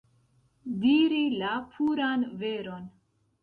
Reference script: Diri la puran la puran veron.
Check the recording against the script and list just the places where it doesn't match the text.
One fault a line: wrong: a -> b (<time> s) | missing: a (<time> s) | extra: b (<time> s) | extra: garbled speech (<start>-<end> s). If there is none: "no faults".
missing: la puran (2.3 s)